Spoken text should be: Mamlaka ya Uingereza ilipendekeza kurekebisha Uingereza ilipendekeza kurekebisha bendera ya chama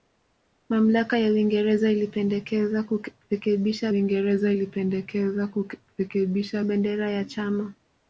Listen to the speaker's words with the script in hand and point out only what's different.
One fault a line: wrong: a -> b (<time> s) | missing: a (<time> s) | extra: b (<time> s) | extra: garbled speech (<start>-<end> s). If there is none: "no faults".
no faults